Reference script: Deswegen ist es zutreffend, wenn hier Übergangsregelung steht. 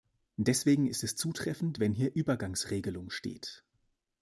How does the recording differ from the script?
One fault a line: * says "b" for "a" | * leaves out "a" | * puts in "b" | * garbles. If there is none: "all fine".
all fine